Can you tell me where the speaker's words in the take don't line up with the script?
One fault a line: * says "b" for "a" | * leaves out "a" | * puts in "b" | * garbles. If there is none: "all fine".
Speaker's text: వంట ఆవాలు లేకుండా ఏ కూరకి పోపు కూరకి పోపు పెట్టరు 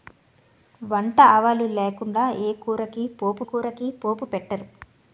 all fine